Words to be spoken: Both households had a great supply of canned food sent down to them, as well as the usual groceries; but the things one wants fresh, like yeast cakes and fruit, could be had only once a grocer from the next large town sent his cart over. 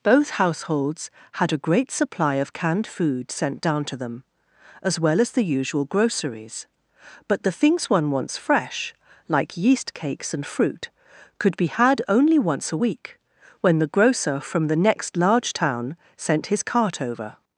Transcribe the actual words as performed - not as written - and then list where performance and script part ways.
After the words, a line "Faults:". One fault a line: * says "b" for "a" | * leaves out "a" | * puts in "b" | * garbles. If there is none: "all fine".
Both households had a great supply of canned food sent down to them, as well as the usual groceries; but the things one wants fresh, like yeast cakes and fruit, could be had only once a week, when the grocer from the next large town sent his cart over.
Faults:
* puts in "week when the"